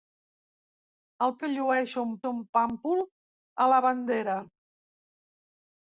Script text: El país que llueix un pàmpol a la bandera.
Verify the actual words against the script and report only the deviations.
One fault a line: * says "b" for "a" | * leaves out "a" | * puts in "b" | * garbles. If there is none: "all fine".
* leaves out "país"
* puts in "un"